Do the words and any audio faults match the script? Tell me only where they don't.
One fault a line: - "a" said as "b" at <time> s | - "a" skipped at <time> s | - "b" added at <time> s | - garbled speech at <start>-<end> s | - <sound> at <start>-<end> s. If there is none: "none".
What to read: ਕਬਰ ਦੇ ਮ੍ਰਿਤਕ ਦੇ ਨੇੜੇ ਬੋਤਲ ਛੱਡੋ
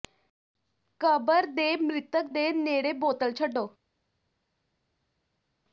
none